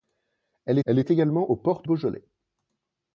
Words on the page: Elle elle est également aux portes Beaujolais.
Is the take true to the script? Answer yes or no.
yes